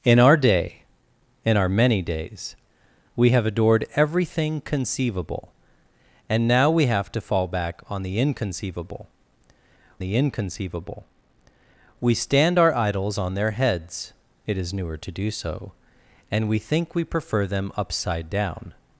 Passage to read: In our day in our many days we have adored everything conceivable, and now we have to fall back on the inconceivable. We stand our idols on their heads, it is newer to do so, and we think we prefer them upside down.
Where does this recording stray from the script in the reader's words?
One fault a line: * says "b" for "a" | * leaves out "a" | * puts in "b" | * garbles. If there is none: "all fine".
* puts in "the inconceivable"